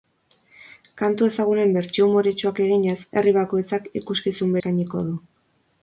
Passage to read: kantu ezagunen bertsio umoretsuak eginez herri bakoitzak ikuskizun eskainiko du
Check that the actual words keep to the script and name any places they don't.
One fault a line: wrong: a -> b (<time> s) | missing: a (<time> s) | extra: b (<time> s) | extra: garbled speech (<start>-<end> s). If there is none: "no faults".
no faults